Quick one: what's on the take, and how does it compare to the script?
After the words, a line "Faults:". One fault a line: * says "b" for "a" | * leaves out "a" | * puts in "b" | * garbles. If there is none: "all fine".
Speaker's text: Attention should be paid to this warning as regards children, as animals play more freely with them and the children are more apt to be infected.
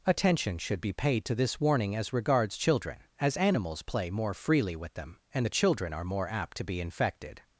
Attention should be paid to this warning as regards children, as animals play more freely with them and the children are more apt to be infected.
Faults:
all fine